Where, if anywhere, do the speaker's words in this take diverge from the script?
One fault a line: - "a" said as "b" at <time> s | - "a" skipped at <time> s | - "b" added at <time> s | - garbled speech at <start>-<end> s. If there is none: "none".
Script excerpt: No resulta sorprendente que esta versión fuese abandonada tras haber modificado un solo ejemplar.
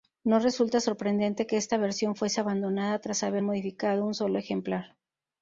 none